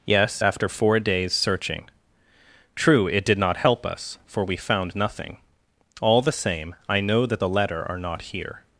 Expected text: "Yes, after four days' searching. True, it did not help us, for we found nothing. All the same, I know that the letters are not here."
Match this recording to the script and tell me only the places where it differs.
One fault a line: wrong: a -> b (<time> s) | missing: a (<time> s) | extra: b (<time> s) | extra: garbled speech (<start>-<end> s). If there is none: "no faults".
wrong: letters -> letter (7.5 s)